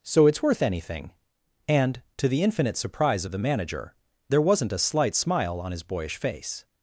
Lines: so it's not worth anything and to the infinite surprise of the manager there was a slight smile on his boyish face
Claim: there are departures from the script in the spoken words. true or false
true